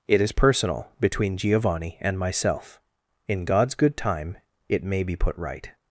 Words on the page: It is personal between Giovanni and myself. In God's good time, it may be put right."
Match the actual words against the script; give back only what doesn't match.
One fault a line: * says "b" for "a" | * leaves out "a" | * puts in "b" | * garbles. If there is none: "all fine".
all fine